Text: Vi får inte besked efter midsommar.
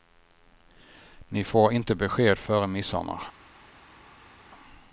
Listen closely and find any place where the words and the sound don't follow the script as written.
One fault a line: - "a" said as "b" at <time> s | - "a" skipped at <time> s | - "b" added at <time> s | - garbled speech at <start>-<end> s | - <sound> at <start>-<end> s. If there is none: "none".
- "Vi" said as "Ni" at 1.3 s
- "efter" said as "före" at 2.4 s